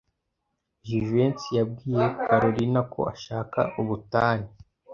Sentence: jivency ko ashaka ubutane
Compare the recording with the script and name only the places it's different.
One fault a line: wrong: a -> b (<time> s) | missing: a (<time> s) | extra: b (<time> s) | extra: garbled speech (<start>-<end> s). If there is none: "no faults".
extra: yabwiye kalorina (1.6 s)